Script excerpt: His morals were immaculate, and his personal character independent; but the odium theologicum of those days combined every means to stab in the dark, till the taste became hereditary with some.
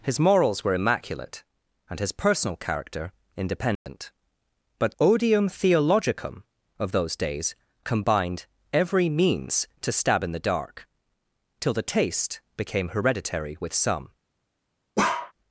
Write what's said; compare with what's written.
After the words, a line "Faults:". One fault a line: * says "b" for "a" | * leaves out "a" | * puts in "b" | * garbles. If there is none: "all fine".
His morals were immaculate, and his personal character independent; but odium theologicum of those days combined every means to stab in the dark, till the taste became hereditary with some.
Faults:
* leaves out "the"